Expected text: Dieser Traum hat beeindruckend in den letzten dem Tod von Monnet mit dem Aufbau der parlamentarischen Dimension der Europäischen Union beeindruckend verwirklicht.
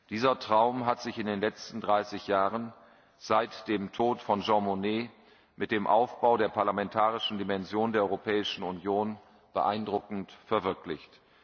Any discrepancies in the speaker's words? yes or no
yes